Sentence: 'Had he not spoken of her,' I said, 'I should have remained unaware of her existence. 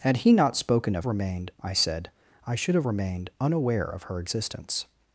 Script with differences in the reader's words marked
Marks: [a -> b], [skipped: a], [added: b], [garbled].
'Had he not spoken of [her,' -> remained] I said, 'I should have remained unaware of her existence.